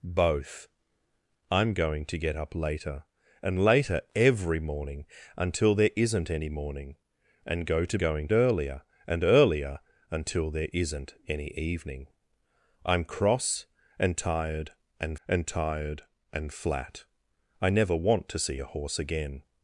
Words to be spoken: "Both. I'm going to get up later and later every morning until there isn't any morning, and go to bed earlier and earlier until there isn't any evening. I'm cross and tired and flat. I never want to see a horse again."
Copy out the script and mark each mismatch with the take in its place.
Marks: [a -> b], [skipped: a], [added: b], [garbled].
"Both. I'm going to get up later and later every morning until there isn't any morning, and go to [bed -> going] earlier and earlier until there isn't any evening. I'm cross and tired and [added: and tired and] flat. I never want to see a horse again."